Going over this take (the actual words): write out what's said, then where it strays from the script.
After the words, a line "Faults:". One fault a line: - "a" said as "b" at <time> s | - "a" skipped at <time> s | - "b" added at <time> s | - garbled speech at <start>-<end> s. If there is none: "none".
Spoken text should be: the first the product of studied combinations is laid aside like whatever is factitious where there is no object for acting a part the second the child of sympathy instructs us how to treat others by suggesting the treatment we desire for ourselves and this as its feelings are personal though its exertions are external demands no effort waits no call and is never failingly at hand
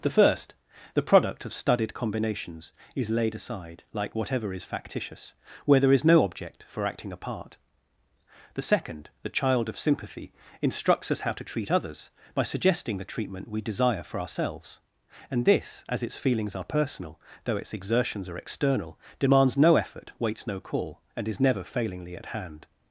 the first the product of studied combinations is laid aside like whatever is factitious where there is no object for acting a part the second the child of sympathy instructs us how to treat others by suggesting the treatment we desire for ourselves and this as its feelings are personal though its exertions are external demands no effort waits no call and is never failingly at hand
Faults:
none